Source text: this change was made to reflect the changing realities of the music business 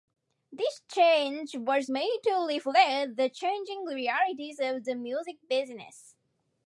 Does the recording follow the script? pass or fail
pass